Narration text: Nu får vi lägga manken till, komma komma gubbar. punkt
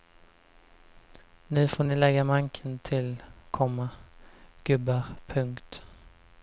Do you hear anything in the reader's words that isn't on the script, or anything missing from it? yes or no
yes